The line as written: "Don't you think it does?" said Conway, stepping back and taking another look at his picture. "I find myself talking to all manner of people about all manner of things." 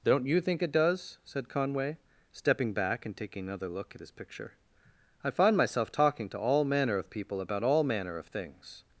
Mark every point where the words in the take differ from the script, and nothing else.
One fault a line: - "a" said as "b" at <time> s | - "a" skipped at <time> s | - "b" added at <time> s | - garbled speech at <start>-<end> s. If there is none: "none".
none